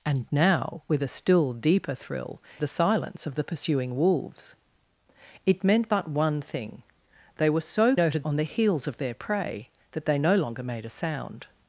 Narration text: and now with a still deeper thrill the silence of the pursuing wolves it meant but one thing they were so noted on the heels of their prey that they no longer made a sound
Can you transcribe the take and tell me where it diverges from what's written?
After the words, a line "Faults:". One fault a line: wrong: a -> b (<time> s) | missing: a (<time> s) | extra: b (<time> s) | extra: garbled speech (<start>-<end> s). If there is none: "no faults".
and now with a still deeper thrill the silence of the pursuing wolves it meant but one thing they were so noted on the heels of their prey that they no longer made a sound
Faults:
no faults